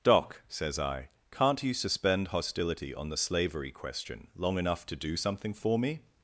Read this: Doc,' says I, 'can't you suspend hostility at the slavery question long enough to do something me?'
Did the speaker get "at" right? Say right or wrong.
wrong